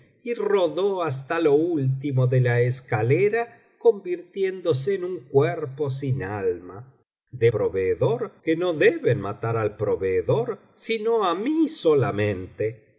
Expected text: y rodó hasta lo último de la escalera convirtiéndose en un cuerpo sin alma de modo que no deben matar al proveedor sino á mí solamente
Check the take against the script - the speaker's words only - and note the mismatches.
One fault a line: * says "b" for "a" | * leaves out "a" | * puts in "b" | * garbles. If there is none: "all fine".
* says "proveedor" for "modo"